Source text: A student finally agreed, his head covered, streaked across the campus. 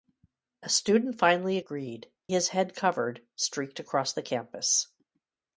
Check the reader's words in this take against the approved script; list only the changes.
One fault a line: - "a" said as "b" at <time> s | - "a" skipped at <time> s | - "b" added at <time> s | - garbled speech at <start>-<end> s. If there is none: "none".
none